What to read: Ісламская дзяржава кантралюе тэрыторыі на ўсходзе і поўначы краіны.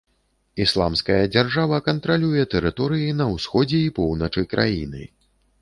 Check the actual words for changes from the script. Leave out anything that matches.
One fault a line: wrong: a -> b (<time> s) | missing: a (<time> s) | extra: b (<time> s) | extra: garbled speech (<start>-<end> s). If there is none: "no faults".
no faults